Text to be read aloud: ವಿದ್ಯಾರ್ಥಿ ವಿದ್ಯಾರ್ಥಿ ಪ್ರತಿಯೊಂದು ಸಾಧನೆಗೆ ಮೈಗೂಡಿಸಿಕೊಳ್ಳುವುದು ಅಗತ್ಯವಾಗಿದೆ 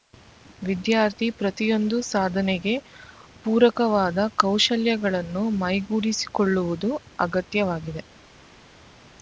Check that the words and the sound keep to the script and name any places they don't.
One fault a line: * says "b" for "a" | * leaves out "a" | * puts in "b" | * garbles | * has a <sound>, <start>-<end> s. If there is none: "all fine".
* leaves out "ವಿದ್ಯಾರ್ಥಿ"
* puts in "ಪೂರಕವಾದ ಕೌಶಲ್ಯಗಳನ್ನು"